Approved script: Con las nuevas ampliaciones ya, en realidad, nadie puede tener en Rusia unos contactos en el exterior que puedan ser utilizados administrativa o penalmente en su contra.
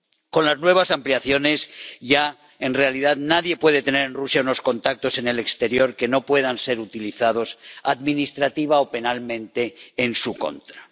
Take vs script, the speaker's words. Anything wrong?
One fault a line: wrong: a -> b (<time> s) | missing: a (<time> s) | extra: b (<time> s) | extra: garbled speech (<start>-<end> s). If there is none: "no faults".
extra: no (6.1 s)